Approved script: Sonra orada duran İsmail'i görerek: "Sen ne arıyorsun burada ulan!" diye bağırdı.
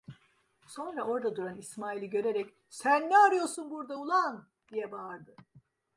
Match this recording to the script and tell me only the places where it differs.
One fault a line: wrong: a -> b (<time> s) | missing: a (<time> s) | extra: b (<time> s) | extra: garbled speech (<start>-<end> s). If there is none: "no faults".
no faults